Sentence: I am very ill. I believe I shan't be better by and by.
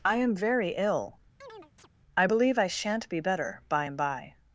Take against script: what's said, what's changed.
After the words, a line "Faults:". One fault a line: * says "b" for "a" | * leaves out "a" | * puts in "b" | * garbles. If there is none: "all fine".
I am very ill. I believe I shan't be better by and by.
Faults:
all fine